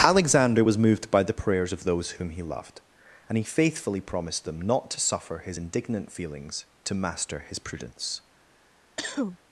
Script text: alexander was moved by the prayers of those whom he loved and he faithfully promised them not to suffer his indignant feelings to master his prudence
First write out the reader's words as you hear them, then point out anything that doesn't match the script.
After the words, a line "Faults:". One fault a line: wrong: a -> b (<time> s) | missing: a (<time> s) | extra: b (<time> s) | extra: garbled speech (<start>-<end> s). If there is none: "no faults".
alexander was moved by the prayers of those whom he loved and he faithfully promised them not to suffer his indignant feelings to master his prudence
Faults:
no faults